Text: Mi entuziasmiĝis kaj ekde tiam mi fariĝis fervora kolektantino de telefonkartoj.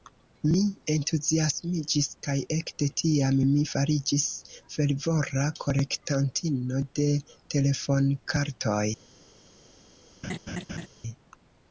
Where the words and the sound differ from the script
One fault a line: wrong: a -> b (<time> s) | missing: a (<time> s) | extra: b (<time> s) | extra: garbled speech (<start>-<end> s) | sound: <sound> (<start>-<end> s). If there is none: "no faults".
sound: laugh (10.2-10.9 s)